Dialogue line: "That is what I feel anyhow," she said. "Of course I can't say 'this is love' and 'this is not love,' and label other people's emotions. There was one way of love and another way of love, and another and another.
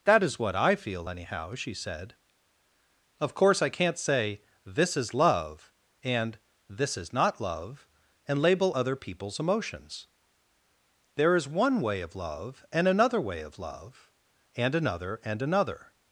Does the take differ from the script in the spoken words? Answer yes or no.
yes